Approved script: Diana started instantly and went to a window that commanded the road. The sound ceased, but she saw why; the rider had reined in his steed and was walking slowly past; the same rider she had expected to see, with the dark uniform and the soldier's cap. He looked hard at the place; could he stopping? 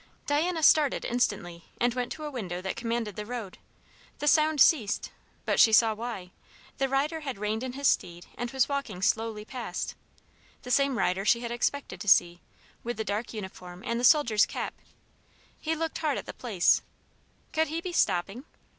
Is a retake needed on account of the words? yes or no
yes